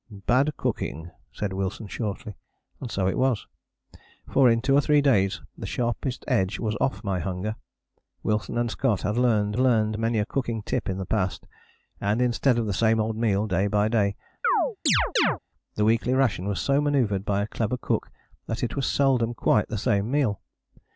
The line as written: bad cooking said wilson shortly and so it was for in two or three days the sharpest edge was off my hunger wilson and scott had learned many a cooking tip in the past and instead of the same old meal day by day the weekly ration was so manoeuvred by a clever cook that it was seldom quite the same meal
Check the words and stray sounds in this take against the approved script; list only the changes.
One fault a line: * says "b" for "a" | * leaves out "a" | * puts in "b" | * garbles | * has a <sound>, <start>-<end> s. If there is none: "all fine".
* puts in "learned"
* has a chirp, 14.4-15.4 s